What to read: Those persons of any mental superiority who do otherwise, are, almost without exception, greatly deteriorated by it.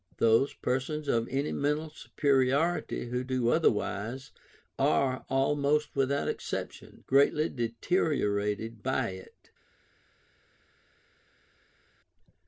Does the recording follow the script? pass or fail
pass